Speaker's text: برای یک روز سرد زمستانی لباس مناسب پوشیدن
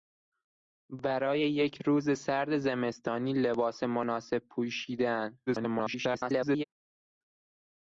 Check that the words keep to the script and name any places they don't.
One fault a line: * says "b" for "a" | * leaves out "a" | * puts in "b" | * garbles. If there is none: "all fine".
* garbles